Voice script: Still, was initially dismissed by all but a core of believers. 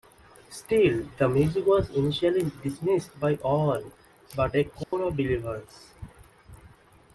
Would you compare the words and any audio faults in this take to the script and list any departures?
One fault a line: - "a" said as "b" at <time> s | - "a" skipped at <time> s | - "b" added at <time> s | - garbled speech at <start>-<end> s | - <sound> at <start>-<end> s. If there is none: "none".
- "the music" added at 1.2 s
- dropout at 4.8-4.9 s